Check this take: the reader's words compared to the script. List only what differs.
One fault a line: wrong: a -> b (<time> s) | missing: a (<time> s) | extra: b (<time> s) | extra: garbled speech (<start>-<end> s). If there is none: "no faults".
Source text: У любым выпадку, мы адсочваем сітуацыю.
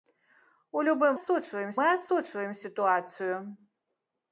wrong: выпадку -> адсочваем (1.2 s)